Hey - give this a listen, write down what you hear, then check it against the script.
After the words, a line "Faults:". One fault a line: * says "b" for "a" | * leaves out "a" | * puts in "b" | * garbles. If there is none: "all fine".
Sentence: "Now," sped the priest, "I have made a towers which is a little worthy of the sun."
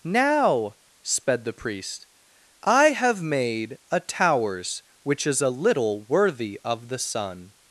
"Now," sped the priest, "I have made a towers which is a little worthy of the sun."
Faults:
all fine